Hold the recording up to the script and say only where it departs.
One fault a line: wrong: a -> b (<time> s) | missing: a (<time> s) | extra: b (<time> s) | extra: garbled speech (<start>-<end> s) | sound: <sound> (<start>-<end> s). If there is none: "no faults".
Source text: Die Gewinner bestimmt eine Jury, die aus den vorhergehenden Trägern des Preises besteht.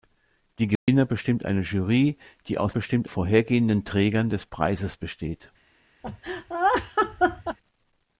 sound: dropout (0.8-0.9 s)
wrong: den -> bestimmt (2.7 s)
sound: laugh (6.0-7.6 s)